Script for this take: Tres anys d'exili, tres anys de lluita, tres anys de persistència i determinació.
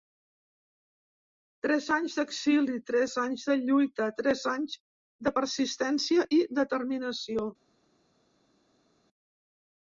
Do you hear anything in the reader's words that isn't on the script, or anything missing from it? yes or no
no